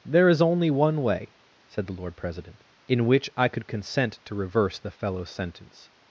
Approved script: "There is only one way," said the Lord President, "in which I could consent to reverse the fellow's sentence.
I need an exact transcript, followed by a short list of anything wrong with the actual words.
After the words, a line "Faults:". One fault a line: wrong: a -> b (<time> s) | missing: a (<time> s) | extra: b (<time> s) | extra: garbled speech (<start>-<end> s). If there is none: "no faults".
"There is only one way," said the Lord President, "in which I could consent to reverse the fellow's sentence.
Faults:
no faults